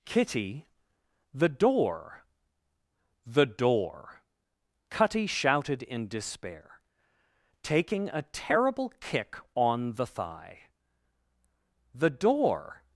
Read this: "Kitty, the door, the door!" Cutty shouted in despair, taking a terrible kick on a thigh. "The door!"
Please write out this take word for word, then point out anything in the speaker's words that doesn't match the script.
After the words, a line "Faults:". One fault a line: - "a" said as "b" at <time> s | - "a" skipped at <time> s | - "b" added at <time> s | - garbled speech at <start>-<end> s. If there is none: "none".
"Kitty, the door, the door!" Cutty shouted in despair, taking a terrible kick on the thigh. "The door!"
Faults:
- "a" said as "the" at 9.9 s